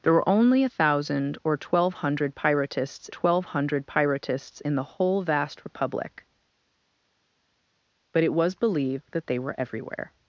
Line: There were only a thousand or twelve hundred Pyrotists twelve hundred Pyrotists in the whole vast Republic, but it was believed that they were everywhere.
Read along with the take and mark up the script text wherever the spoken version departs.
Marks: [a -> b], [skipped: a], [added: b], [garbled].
There were only a thousand or twelve hundred Pyrotists twelve hundred Pyrotists in the whole vast Republic, but it was believed that they were everywhere.